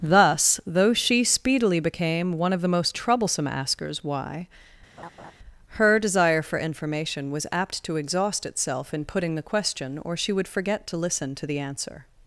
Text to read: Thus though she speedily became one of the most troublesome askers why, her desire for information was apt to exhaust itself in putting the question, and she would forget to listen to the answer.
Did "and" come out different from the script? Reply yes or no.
yes